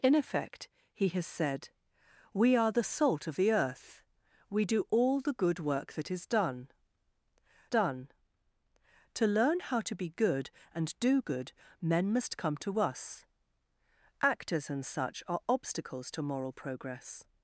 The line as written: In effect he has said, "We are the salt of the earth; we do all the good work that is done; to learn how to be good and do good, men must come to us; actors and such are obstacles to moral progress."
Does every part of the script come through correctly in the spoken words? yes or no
no